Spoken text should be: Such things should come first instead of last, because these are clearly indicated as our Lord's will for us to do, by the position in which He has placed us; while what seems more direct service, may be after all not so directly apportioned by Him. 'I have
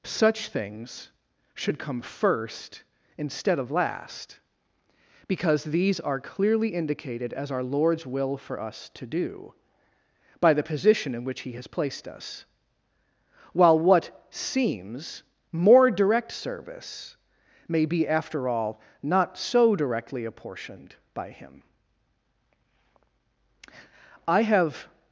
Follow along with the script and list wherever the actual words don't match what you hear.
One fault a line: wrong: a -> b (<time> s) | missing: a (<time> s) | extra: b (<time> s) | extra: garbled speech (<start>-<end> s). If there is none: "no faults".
no faults